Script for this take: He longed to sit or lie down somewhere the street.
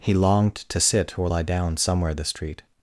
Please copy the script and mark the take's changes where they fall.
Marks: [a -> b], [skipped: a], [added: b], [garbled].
He longed to sit or lie down somewhere the street.